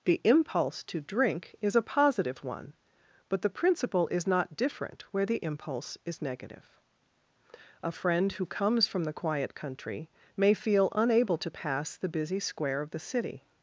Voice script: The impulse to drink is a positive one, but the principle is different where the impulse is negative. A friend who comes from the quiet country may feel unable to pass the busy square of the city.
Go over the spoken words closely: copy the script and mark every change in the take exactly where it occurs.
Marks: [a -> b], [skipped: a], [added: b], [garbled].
The impulse to drink is a positive one, but the principle is [added: not] different where the impulse is negative. A friend who comes from the quiet country may feel unable to pass the busy square of the city.